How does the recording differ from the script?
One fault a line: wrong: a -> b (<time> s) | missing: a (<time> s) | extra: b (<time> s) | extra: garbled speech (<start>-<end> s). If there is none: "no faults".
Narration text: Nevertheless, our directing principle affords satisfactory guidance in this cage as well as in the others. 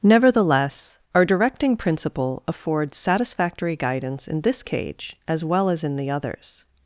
no faults